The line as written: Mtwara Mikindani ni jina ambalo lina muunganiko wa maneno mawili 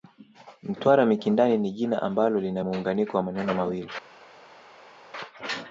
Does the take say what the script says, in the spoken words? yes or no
yes